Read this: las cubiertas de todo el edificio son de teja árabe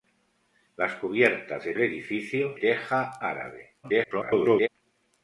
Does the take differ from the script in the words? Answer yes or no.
yes